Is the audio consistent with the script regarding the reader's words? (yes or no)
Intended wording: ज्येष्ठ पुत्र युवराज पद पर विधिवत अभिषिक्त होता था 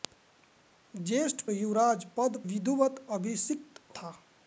no